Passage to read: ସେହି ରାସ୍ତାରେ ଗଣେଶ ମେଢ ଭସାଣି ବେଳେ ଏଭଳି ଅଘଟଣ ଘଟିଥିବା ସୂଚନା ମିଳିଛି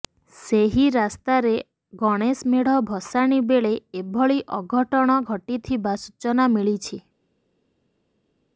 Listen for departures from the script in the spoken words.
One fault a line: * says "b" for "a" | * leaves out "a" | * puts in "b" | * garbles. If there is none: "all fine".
all fine